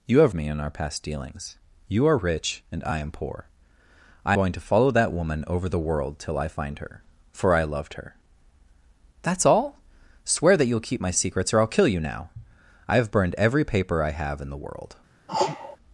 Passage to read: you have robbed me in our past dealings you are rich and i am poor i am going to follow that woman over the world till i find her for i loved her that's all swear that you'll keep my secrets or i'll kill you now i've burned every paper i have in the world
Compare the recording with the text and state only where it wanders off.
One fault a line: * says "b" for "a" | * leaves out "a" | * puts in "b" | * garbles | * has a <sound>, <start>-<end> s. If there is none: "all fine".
* leaves out "robbed"
* leaves out "am"
* has a sneeze, 15.3-15.8 s